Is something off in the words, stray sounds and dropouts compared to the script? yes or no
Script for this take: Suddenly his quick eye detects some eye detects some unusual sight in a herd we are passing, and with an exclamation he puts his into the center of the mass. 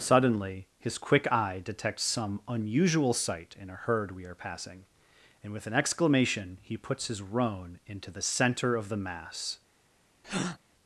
yes